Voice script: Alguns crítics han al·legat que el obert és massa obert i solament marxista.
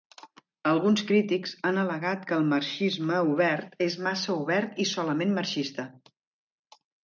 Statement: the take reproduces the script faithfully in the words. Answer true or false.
false